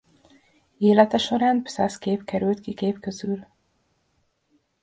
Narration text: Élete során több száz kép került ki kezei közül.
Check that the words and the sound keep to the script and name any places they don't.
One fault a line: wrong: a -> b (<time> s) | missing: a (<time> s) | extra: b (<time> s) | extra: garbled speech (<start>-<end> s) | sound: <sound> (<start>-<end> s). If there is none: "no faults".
missing: több (1.6 s)
wrong: kezei -> kép (2.7 s)